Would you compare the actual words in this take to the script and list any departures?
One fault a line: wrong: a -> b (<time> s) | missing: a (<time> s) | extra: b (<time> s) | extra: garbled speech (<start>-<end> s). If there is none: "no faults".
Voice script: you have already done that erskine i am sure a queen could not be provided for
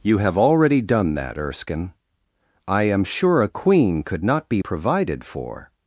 no faults